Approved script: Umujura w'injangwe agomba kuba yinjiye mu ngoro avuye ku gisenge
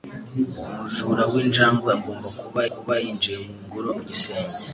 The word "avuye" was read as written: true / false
false